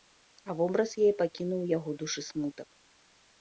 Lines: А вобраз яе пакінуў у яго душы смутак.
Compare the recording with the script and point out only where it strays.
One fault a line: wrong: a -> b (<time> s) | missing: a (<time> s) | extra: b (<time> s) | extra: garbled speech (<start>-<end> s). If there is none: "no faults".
no faults